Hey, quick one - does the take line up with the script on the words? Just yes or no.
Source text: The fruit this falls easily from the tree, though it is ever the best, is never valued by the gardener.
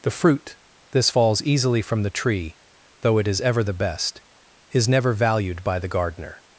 yes